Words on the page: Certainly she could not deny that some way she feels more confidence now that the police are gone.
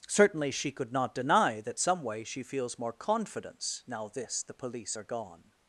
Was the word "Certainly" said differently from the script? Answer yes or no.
no